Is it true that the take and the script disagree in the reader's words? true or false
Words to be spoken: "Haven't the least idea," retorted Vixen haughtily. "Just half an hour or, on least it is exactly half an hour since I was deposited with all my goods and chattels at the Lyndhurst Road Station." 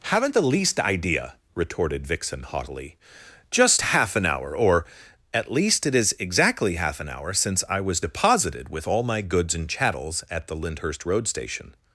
true